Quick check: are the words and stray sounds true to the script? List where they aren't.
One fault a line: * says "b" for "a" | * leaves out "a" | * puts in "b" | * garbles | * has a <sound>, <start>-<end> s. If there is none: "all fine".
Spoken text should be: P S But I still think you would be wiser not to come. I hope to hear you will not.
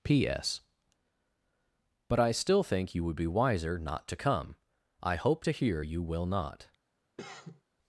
* has a cough, 7.2-7.6 s